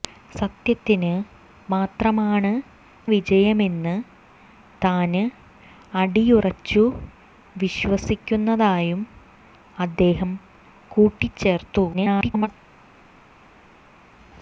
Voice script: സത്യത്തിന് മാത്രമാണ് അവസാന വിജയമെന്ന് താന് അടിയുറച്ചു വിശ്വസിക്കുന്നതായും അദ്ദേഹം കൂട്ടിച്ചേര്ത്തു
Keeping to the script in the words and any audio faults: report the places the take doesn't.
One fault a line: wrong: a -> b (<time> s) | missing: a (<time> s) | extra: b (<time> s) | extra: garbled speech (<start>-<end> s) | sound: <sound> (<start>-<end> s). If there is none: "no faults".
missing: അവസാന (2.5 s)
extra: garbled speech (11.9-12.5 s)